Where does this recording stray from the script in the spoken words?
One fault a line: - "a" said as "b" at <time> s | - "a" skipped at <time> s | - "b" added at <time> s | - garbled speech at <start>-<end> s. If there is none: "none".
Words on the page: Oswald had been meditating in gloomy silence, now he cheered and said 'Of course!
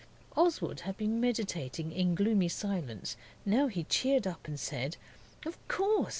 - "up" added at 4.3 s